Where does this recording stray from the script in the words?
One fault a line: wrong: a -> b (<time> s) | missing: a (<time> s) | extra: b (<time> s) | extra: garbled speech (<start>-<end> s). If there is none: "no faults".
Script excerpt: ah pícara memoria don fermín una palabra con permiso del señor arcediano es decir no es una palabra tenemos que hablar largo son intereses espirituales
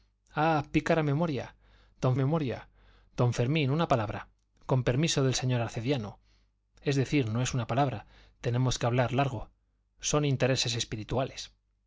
extra: memoria don (2.2 s)